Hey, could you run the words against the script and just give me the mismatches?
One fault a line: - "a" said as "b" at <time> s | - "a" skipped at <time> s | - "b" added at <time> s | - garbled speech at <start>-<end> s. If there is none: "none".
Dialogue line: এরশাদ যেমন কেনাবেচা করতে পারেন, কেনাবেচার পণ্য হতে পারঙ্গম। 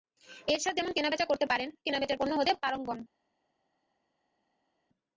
none